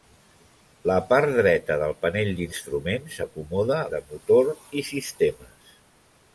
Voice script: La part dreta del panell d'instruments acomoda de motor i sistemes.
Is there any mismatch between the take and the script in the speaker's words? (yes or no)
no